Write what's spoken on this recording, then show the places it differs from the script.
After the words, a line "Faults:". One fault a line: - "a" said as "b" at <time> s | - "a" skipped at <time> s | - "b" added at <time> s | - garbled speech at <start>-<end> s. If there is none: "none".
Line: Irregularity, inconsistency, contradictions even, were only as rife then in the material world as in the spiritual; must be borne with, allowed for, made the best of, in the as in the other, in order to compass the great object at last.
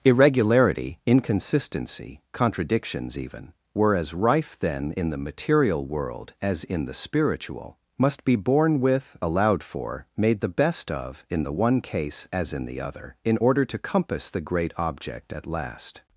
Irregularity, inconsistency, contradictions even, were as rife then in the material world as in the spiritual; must be borne with, allowed for, made the best of, in the one case as in the other, in order to compass the great object at last.
Faults:
- "only" skipped at 4.0 s
- "one case" added at 11.5 s